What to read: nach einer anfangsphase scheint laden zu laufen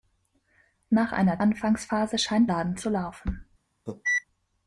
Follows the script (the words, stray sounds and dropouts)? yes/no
no